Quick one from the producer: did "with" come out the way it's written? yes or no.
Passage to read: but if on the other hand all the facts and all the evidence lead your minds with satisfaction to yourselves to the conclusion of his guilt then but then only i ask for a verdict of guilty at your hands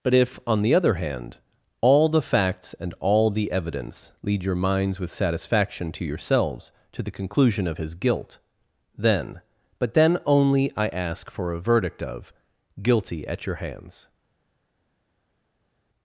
yes